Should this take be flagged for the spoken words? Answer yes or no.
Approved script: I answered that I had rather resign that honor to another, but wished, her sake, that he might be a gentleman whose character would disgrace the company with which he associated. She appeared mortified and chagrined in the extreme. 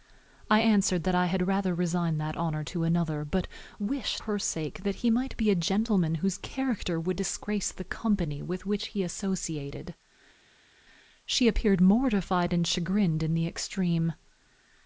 no